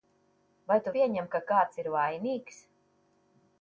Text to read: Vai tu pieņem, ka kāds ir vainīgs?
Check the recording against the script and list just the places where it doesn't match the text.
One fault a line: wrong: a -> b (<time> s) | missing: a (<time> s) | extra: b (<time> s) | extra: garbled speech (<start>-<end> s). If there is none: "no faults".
no faults